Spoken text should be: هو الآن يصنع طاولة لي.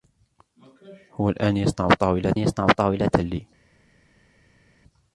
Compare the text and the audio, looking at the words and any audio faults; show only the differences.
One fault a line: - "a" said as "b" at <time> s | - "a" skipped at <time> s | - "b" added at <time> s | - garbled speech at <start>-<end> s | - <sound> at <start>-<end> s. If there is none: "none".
- "يصنع طاولة" added at 2.4 s